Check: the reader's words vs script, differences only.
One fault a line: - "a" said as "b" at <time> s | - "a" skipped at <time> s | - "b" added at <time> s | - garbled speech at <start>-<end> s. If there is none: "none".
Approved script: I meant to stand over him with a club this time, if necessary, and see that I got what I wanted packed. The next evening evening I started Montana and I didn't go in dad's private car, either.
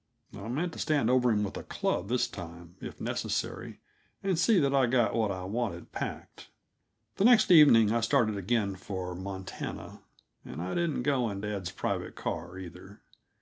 - "evening" skipped at 7.9 s
- "again for" added at 8.4 s